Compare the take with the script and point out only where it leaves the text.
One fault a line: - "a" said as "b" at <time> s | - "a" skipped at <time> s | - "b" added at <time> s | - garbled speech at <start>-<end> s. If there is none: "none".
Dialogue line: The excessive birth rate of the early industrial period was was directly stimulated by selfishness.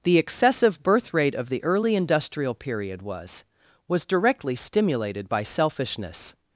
none